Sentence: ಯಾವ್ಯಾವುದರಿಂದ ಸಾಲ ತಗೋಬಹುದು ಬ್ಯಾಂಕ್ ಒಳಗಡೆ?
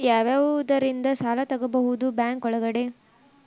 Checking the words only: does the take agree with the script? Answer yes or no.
yes